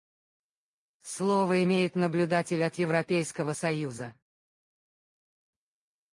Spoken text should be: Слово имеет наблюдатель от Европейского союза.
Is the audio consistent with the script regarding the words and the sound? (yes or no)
yes